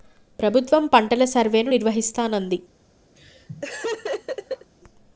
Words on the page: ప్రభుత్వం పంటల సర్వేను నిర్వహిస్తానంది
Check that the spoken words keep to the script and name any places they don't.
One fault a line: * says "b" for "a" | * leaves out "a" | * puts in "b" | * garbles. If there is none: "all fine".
all fine